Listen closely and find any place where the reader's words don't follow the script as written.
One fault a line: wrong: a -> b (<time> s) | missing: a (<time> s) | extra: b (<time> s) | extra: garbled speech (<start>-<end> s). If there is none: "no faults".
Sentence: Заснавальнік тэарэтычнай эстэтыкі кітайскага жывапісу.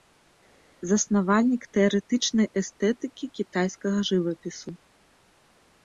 no faults